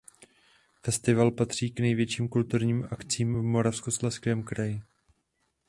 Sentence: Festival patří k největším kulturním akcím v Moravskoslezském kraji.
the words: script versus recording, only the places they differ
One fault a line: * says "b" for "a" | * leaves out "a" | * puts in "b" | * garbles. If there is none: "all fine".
all fine